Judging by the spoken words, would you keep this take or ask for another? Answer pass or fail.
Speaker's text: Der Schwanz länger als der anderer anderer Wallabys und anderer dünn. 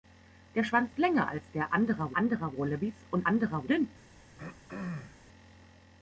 pass